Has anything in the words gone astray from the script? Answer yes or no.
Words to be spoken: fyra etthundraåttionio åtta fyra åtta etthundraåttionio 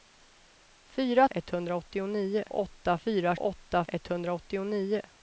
no